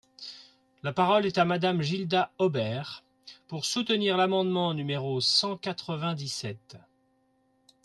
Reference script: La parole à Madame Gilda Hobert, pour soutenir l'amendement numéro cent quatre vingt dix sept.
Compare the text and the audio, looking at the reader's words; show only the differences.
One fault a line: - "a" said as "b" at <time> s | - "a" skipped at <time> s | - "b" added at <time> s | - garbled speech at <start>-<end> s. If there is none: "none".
- "est" added at 1.3 s